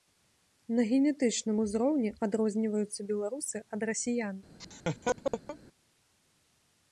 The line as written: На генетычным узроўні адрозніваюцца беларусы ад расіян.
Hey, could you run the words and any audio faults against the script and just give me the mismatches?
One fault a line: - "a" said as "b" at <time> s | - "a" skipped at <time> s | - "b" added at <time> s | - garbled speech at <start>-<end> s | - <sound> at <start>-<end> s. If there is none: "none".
- laugh at 4.6-5.6 s